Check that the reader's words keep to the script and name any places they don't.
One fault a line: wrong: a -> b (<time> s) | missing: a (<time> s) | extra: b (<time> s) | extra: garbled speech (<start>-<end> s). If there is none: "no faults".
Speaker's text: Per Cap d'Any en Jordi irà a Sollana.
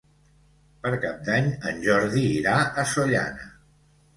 no faults